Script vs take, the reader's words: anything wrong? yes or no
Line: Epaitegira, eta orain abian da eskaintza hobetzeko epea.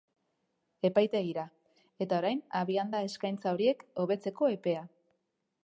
yes